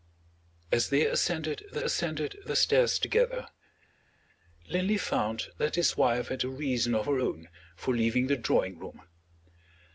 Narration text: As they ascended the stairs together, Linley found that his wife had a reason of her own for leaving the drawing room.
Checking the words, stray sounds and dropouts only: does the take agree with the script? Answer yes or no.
no